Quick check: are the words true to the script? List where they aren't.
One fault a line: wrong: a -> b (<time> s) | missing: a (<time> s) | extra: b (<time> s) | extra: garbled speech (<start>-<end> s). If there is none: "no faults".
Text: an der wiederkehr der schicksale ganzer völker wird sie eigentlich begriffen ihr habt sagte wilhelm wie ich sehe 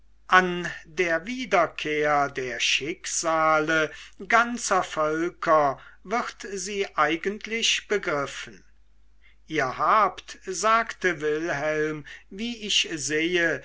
no faults